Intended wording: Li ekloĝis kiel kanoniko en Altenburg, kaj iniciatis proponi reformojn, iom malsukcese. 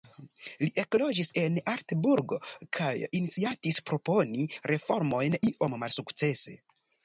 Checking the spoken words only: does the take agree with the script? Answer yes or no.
no